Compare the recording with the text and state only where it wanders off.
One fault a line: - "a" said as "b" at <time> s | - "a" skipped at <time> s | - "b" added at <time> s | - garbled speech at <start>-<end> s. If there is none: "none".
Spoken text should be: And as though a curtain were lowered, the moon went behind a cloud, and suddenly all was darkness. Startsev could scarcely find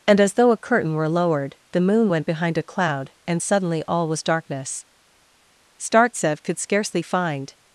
none